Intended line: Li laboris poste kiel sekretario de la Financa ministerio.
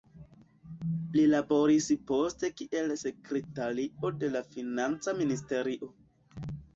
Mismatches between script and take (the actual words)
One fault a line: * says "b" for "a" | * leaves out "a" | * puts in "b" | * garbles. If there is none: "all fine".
all fine